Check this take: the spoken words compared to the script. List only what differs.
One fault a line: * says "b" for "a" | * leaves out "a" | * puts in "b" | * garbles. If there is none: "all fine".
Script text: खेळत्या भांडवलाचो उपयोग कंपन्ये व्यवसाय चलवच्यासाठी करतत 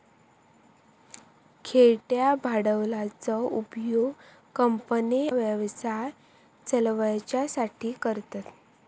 all fine